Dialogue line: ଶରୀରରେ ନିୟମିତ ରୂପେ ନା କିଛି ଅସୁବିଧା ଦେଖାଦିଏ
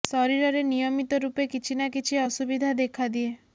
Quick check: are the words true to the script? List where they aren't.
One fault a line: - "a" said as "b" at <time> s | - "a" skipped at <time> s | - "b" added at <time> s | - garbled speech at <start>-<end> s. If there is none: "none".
- "କିଛି" added at 1.5 s